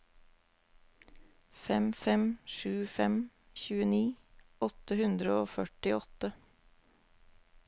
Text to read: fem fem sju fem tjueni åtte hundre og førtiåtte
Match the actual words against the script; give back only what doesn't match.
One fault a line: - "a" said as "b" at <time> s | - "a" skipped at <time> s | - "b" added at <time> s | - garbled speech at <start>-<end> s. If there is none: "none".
none